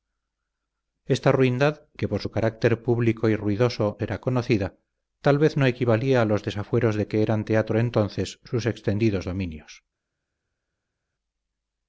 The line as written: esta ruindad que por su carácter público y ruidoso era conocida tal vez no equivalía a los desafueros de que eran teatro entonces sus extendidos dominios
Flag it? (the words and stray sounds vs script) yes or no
no